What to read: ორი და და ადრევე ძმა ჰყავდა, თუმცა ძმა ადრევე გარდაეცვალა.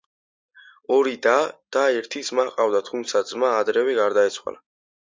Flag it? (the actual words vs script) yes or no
yes